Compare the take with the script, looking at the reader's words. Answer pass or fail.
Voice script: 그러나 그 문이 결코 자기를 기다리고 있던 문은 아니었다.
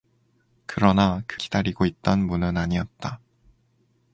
fail